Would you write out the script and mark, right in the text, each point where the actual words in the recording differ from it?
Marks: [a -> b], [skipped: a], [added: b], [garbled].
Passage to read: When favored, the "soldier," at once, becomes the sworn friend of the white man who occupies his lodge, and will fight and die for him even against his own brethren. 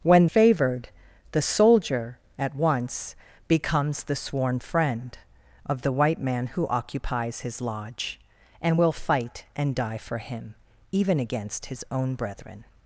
When favored, the "soldier," at once, becomes the sworn friend of the white man who occupies his lodge, and will fight and die for him even against his own brethren.